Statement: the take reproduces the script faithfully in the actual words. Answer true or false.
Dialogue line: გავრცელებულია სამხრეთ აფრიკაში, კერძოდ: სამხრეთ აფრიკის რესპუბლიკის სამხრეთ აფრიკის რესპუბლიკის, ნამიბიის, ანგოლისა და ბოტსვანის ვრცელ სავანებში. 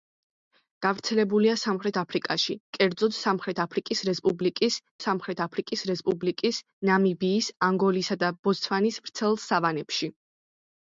true